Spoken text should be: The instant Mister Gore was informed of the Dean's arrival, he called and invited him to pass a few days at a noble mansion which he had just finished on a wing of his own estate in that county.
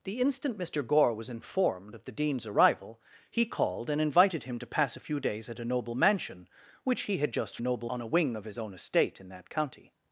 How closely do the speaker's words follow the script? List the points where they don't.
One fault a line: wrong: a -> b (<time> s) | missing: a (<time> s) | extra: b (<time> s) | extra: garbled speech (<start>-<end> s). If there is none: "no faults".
wrong: finished -> noble (7.6 s)